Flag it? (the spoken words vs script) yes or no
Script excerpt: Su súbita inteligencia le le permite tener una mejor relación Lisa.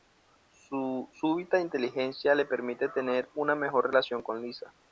yes